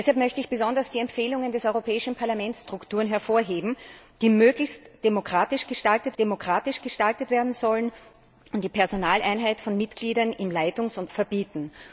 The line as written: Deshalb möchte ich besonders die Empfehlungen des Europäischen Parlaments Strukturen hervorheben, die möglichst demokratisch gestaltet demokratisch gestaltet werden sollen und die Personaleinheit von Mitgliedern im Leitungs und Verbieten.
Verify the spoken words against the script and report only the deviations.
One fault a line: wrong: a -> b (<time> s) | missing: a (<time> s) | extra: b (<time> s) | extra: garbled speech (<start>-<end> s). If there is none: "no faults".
no faults